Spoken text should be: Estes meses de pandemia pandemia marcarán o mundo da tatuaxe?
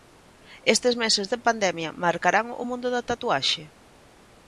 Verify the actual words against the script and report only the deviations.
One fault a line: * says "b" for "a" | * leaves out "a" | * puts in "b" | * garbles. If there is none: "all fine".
* leaves out "pandemia"